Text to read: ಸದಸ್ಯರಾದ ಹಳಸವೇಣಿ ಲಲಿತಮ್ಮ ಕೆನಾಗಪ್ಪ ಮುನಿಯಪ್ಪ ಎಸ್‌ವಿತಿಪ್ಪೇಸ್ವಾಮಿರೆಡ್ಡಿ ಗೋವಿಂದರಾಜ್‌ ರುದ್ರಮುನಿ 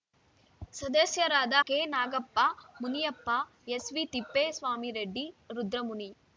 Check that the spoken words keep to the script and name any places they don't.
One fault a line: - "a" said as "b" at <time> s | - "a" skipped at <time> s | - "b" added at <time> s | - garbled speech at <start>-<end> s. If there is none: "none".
- "ಹಳಸವೇಣಿ ಲಲಿತಮ್ಮ" skipped at 1.6 s
- "ಗೋವಿಂದರಾಜ್" skipped at 5.3 s